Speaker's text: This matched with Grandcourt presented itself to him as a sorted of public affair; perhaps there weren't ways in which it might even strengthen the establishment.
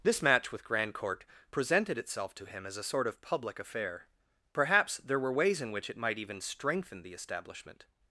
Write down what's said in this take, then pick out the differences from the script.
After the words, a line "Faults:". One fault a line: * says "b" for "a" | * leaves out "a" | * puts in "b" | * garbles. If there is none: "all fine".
This match with Grandcourt presented itself to him as a sort of public affair; perhaps there were ways in which it might even strengthen the establishment.
Faults:
* says "match" for "matched"
* says "sort" for "sorted"
* says "were" for "weren't"